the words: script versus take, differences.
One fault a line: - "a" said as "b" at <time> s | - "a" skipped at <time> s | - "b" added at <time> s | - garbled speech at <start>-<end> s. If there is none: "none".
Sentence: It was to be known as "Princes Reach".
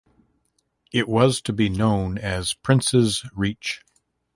none